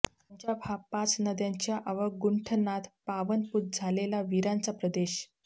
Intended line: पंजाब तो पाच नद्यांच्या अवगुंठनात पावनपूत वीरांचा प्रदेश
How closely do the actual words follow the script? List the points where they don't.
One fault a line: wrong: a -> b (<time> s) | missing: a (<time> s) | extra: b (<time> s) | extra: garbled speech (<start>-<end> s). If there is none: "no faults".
wrong: तो -> हा (0.6 s)
extra: झालेला (3.7 s)